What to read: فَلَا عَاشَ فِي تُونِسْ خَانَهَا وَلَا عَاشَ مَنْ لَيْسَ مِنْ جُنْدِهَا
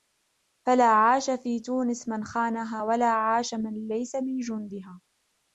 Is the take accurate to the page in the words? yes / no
no